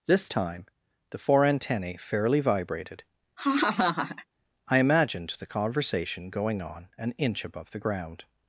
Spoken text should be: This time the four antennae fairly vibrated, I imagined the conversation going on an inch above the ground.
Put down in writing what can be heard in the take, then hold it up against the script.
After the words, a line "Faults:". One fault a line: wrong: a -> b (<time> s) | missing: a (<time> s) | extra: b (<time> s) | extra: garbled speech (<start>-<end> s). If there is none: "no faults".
This time the four antennae fairly vibrated, I imagined the conversation going on an inch above the ground.
Faults:
no faults